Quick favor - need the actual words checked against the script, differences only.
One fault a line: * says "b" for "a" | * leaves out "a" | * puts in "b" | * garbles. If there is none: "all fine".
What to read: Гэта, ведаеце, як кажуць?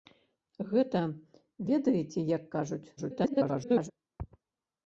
* garbles